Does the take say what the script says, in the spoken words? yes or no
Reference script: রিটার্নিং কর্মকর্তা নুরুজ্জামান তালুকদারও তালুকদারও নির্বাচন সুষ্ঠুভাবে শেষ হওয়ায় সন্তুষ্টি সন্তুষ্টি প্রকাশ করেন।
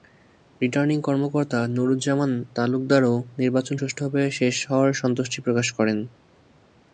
no